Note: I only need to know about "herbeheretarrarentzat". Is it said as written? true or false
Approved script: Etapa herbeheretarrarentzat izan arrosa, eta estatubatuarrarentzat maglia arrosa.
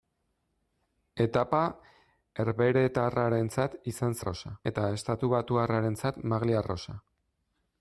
true